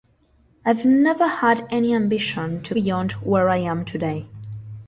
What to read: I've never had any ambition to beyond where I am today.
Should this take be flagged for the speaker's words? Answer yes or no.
no